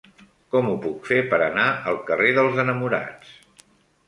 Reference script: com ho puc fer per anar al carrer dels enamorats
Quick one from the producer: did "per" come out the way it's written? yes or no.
yes